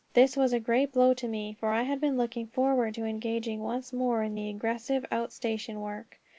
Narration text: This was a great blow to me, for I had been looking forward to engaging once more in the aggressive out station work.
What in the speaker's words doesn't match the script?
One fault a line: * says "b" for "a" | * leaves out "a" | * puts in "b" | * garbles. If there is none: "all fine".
all fine